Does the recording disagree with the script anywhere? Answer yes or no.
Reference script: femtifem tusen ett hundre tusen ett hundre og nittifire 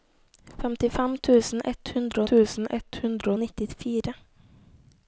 no